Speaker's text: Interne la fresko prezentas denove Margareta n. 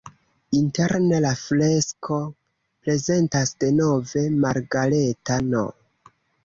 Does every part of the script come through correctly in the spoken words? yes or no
yes